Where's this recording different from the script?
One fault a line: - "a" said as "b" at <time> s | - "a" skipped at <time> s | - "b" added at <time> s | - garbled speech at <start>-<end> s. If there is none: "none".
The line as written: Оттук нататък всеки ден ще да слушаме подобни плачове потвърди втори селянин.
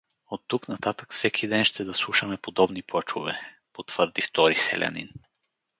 none